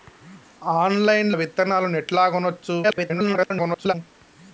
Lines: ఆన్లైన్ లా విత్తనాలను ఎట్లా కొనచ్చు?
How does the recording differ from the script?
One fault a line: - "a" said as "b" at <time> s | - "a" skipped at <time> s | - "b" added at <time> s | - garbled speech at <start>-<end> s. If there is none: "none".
- "లా" skipped at 1.3 s
- garbled speech at 2.8-3.9 s